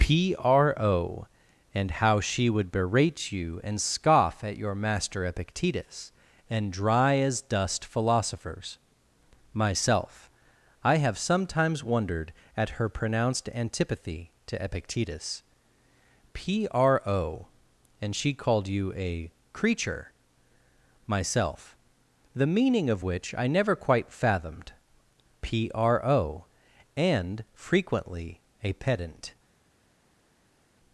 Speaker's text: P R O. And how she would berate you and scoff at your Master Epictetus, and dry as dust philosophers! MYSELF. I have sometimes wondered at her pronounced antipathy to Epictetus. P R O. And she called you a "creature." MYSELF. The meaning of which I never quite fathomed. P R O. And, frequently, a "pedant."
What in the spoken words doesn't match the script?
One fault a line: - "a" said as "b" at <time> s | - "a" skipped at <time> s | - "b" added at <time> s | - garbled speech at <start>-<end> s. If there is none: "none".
none